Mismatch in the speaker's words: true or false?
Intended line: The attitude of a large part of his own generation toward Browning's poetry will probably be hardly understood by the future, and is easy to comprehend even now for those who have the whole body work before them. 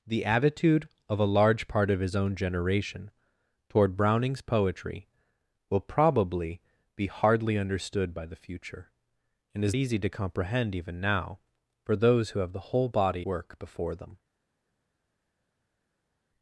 false